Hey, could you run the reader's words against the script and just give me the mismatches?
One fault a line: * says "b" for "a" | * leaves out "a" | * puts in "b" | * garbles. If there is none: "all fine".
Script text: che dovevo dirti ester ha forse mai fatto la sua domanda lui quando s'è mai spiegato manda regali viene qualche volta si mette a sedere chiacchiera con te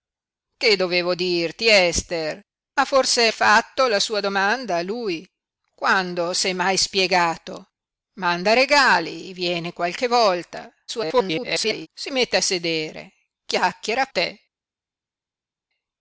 * leaves out "mai"
* garbles
* leaves out "con"